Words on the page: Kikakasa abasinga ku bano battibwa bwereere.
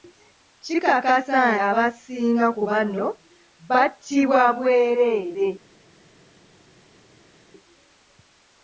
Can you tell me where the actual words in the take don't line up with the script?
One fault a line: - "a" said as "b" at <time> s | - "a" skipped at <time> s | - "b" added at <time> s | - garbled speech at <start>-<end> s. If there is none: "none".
none